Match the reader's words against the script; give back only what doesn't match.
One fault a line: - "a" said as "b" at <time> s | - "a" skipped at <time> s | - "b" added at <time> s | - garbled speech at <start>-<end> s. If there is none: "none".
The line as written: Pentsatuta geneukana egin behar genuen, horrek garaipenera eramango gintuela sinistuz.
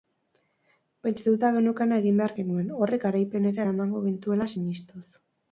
none